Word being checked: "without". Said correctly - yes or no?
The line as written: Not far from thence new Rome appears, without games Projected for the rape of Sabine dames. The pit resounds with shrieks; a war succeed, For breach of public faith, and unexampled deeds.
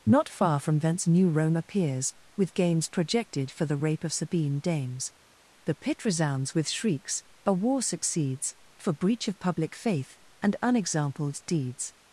no